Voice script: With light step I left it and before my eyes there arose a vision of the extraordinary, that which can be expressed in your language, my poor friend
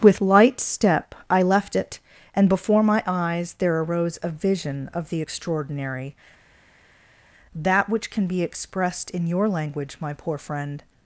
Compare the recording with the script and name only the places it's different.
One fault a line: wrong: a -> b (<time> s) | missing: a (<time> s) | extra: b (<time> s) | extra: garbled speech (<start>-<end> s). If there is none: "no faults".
no faults